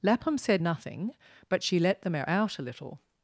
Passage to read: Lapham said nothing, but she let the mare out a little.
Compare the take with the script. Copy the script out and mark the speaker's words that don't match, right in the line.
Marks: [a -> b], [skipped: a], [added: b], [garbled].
Lapham said nothing, but she let the mare out a little.